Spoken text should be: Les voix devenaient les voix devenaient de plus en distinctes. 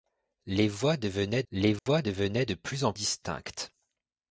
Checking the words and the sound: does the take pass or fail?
fail